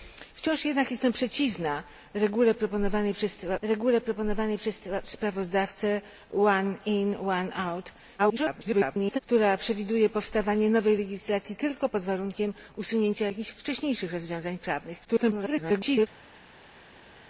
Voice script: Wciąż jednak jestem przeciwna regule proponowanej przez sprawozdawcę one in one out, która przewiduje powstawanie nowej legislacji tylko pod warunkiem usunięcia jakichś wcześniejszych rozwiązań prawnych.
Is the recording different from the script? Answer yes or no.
yes